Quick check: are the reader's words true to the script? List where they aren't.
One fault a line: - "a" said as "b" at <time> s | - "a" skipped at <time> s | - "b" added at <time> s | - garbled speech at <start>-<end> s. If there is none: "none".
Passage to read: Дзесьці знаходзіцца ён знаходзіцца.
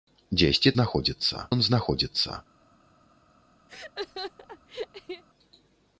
none